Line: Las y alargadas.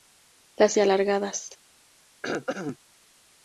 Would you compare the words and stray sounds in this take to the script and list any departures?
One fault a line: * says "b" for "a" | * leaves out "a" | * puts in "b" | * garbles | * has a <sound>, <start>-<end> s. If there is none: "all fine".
* has a throat clearing, 2.2-2.8 s